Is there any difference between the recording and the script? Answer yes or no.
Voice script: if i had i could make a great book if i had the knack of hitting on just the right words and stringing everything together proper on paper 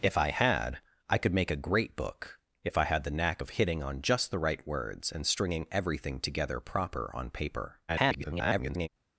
yes